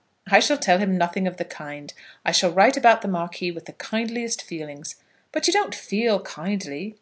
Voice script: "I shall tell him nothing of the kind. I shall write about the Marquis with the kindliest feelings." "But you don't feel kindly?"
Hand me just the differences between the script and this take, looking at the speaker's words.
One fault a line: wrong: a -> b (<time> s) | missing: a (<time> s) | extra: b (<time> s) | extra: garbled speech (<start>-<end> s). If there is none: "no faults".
no faults